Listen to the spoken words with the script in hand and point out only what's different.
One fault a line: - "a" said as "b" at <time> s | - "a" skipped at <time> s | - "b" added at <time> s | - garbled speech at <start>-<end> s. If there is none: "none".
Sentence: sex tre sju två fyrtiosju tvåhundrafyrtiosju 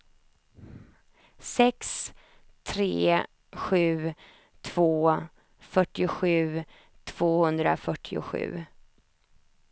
none